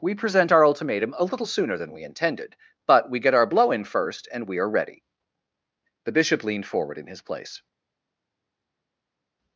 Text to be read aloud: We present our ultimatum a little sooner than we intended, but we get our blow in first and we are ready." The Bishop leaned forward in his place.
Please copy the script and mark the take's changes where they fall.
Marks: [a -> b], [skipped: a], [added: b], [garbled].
We present our ultimatum a little sooner than we intended, but we get our blow in first and we are ready." The Bishop leaned forward in his place.